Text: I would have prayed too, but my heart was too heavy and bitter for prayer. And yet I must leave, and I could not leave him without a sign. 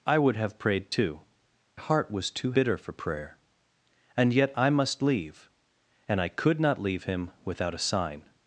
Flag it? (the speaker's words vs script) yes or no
yes